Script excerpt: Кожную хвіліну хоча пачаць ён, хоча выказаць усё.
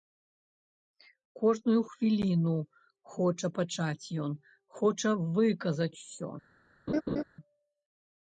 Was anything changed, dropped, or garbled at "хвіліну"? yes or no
no